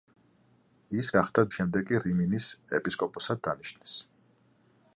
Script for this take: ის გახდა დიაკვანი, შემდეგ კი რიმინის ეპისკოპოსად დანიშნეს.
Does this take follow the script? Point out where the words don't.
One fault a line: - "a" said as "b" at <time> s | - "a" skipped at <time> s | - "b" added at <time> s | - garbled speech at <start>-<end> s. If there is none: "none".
- "დიაკვანი" skipped at 1.4 s